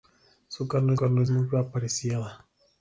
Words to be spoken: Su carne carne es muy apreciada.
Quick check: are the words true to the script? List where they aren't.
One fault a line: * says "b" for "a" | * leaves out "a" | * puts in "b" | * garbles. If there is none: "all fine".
all fine